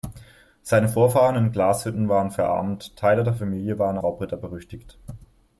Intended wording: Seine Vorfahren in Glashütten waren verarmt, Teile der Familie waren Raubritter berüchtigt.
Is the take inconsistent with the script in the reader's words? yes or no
no